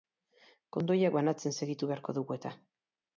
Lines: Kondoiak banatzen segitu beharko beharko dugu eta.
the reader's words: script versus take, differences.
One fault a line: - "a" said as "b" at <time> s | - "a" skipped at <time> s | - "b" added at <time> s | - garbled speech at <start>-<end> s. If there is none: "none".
- "beharko" skipped at 2.2 s